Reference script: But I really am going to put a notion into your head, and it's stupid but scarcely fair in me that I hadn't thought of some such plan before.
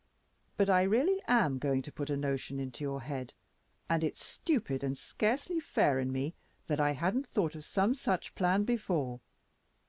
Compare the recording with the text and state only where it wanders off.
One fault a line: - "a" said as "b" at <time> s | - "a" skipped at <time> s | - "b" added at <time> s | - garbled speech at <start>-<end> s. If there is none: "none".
- "but" said as "and" at 4.8 s